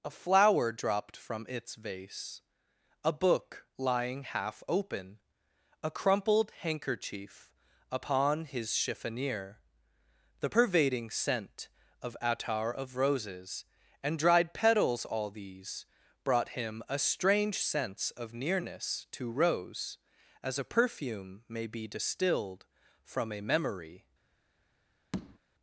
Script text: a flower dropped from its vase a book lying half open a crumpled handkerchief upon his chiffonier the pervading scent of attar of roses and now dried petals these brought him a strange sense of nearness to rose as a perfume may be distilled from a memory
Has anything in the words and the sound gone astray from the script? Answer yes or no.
yes